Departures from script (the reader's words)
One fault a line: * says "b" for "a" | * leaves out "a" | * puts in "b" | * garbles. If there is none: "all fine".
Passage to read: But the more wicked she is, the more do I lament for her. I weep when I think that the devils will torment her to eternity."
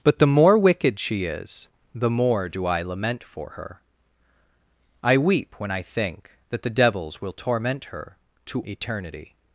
all fine